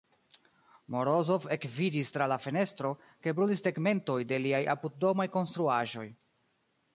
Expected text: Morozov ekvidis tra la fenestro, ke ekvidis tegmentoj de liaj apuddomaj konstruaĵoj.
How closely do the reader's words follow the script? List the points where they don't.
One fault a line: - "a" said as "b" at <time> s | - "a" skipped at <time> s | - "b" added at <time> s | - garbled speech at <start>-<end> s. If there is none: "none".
- "ekvidis" said as "brulis" at 3.4 s